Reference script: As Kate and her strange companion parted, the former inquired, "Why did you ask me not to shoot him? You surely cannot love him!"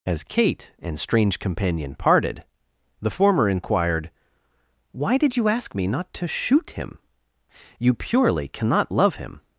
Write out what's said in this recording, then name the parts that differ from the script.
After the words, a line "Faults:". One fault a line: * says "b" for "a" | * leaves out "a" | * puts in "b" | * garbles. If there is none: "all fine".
As Kate and strange companion parted, the former inquired, "Why did you ask me not to shoot him? You purely cannot love him!"
Faults:
* leaves out "her"
* says "purely" for "surely"